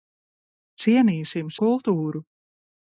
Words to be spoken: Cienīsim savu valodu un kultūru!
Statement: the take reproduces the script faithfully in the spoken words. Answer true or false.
false